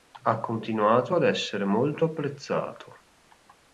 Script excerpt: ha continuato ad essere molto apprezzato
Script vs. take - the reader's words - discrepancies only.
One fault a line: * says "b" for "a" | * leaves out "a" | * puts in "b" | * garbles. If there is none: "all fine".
all fine